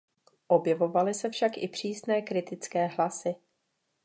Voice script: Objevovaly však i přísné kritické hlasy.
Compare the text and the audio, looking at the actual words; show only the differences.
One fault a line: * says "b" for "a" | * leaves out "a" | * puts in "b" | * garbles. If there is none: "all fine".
* puts in "se"